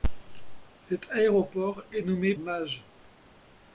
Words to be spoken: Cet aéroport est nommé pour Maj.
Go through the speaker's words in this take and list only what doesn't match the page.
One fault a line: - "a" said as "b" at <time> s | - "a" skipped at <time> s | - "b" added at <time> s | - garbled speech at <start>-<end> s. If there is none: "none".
- "pour" skipped at 2.3 s